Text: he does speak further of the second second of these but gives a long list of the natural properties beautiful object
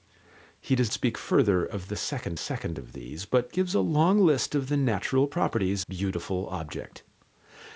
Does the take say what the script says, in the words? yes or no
yes